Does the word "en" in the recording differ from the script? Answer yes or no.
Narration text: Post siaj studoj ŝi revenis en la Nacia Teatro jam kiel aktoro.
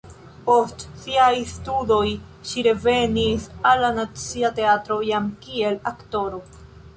yes